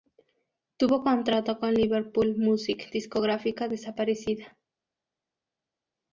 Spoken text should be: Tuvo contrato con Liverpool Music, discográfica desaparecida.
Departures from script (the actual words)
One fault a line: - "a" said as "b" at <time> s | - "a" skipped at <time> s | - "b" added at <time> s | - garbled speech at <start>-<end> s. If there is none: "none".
none